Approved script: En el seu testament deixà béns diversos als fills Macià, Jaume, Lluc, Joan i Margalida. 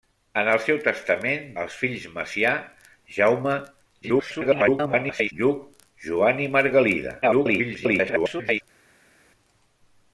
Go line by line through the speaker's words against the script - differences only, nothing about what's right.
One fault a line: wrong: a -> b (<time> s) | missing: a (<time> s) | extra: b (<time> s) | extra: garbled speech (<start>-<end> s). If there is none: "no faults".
missing: deixà béns diversos (1.4 s)
extra: garbled speech (4.0-5.3 s)
extra: garbled speech (7.2-8.6 s)